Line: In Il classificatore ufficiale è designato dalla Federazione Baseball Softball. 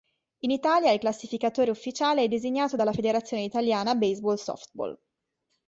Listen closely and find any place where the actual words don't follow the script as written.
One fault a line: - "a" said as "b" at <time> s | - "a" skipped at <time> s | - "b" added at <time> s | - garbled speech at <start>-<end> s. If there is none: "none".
- "Italia" added at 0.5 s
- "Italiana" added at 3.4 s